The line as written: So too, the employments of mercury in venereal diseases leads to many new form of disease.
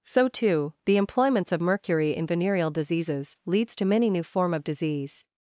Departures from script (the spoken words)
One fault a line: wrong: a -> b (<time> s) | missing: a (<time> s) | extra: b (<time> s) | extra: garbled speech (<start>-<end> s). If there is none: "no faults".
no faults